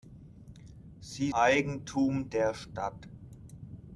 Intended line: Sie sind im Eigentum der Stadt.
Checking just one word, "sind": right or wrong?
wrong